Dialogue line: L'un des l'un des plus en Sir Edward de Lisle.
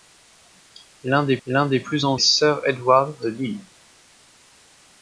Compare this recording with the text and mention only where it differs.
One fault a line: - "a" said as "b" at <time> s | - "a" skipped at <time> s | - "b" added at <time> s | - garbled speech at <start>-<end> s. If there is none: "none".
none